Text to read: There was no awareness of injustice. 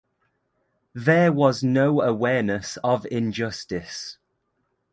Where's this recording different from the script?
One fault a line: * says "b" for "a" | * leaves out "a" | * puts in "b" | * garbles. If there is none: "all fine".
all fine